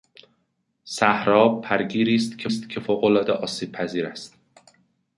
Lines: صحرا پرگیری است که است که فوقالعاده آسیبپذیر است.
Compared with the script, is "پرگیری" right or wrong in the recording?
right